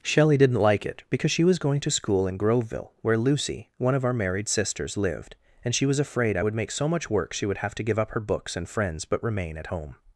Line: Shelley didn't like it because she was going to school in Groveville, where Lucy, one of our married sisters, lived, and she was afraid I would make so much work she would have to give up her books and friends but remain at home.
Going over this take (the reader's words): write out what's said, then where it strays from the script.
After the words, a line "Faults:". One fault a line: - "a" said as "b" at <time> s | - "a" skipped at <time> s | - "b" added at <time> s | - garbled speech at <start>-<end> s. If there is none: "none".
Shelley didn't like it because she was going to school in Groveville, where Lucy, one of our married sisters, lived, and she was afraid I would make so much work she would have to give up her books and friends but remain at home.
Faults:
none